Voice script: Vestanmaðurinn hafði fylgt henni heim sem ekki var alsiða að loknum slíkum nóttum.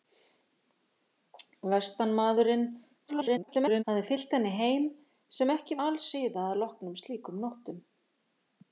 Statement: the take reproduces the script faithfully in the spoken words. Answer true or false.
false